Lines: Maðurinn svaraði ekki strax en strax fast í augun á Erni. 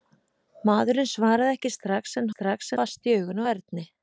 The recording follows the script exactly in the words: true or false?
true